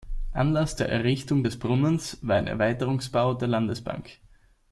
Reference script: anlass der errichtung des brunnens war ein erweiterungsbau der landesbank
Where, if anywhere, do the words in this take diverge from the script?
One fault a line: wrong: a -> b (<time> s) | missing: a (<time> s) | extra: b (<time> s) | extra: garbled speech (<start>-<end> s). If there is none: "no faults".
no faults